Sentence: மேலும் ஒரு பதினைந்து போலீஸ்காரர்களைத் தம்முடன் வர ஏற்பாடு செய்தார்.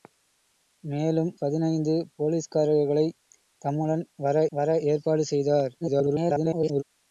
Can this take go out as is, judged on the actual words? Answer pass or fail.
fail